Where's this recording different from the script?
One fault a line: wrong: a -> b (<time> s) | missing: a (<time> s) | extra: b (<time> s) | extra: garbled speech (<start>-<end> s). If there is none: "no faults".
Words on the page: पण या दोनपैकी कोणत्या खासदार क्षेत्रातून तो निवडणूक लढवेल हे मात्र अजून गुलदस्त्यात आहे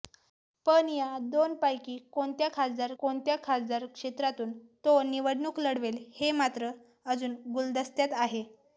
extra: कोणत्या खासदार (3.0 s)